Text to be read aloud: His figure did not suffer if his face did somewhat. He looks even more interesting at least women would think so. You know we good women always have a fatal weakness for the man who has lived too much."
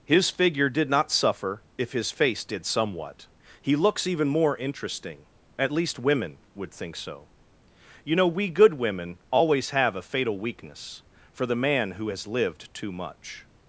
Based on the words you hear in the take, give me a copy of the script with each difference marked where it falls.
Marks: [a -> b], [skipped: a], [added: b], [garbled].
His figure did not suffer if his face did somewhat. He looks even more interesting at least women would think so. You know we good women always have a fatal weakness for the man who has lived too much."